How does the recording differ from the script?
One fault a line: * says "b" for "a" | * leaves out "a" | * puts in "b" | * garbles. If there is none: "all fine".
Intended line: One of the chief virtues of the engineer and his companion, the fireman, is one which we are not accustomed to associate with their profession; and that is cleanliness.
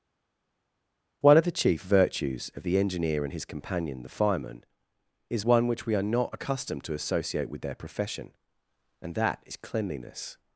all fine